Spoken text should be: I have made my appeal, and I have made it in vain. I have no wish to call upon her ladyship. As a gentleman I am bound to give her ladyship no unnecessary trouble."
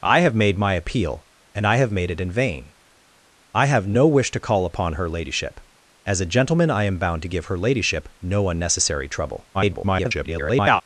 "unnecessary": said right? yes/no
yes